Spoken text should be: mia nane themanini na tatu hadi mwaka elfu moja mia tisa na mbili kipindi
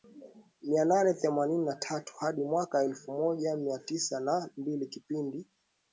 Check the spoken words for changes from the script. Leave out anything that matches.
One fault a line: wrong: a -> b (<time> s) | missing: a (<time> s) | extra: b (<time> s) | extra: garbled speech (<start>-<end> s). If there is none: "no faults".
no faults